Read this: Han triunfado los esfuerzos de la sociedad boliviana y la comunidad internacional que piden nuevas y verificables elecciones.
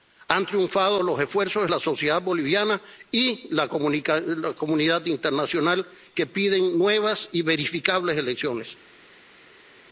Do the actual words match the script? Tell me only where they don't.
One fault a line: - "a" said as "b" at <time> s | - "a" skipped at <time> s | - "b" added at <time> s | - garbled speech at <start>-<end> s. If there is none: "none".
none